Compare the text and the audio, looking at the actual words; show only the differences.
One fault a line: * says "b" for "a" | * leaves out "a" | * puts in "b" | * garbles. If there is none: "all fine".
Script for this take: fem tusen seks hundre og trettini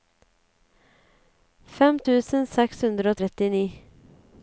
all fine